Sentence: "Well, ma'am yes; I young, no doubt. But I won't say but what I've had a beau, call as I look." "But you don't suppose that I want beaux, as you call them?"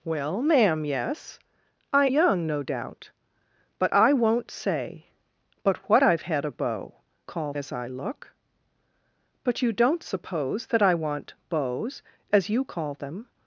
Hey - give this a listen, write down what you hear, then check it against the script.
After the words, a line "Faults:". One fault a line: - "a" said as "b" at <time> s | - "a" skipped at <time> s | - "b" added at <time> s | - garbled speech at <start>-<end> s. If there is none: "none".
"Well, ma'am yes; I young, no doubt. But I won't say but what I've had a beau, call as I look." "But you don't suppose that I want beaux, as you call them?"
Faults:
none